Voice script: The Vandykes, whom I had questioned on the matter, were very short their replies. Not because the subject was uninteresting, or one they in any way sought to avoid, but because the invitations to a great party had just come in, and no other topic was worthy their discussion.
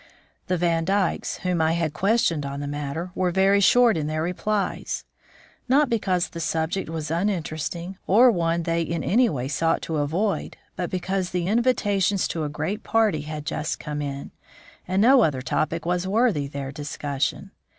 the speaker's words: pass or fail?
fail